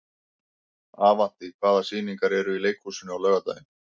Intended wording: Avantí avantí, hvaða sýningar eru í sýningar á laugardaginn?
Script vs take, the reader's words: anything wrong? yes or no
yes